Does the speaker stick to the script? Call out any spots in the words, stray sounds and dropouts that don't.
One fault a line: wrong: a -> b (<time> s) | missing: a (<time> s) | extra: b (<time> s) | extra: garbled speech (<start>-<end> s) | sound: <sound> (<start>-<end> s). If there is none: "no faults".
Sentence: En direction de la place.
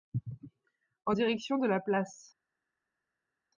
no faults